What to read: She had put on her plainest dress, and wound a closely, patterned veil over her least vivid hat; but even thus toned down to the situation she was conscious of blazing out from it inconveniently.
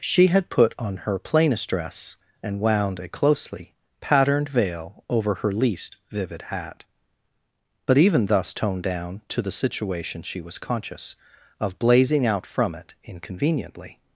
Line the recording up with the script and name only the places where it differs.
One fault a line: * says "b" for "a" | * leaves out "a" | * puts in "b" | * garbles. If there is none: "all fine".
all fine